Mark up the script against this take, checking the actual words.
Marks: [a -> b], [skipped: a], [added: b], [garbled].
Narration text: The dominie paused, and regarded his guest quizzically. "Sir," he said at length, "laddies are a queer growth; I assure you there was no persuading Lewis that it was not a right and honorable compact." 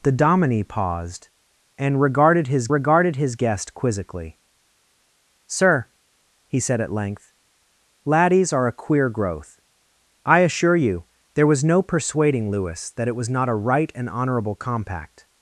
The dominie paused, and regarded his [added: regarded his] guest quizzically. "Sir," he said at length, "laddies are a queer growth; I assure you there was no persuading Lewis that it was not a right and honorable compact."